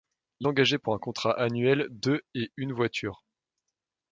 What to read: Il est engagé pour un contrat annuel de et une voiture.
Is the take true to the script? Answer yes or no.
no